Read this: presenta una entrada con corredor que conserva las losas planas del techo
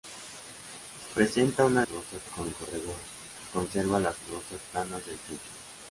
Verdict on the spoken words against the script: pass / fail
fail